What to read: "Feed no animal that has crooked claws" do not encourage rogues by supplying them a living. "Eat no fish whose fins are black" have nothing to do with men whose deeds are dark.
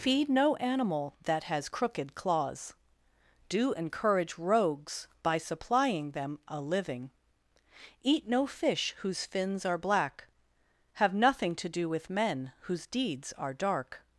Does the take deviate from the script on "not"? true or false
true